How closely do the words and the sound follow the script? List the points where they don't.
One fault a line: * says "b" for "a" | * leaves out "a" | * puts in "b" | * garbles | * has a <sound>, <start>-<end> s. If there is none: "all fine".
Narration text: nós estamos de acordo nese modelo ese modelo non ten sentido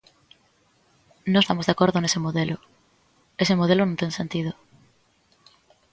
all fine